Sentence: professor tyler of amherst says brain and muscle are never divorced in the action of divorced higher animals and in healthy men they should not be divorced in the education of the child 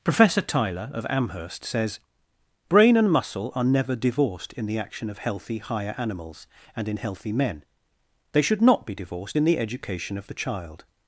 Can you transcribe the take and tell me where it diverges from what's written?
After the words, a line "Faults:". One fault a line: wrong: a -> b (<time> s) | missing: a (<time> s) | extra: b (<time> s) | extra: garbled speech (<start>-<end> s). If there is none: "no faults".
professor tyler of amherst says brain and muscle are never divorced in the action of healthy higher animals and in healthy men they should not be divorced in the education of the child
Faults:
wrong: divorced -> healthy (5.2 s)